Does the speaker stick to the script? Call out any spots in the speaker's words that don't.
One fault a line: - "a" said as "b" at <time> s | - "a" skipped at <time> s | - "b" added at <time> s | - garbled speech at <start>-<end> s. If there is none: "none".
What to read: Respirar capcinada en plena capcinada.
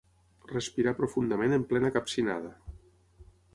- "capcinada" said as "profundament" at 1.0 s